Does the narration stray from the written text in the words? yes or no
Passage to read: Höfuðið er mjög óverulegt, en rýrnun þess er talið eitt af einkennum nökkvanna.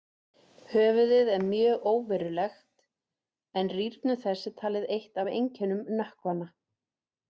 no